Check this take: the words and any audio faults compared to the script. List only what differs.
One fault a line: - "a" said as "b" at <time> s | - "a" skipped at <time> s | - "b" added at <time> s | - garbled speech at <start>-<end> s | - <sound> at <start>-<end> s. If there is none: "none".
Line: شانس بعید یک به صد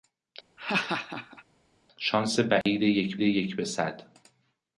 - laugh at 0.6-1.4 s
- dropout at 2.6-2.7 s
- "یک" added at 3.2 s